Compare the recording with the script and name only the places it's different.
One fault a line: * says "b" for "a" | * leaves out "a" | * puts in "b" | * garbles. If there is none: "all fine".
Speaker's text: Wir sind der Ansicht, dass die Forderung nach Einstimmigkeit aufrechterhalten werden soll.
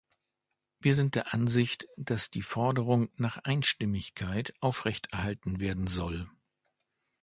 all fine